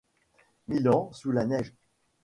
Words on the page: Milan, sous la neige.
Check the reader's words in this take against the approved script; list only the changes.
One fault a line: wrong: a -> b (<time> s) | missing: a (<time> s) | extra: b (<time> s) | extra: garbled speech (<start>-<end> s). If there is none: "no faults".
no faults